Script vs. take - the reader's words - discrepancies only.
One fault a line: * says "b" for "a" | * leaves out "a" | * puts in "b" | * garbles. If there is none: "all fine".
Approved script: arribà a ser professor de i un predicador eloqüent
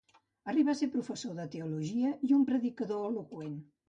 * puts in "teologia"